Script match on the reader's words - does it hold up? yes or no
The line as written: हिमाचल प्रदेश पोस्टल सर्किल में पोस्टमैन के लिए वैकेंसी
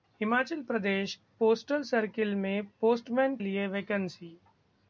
no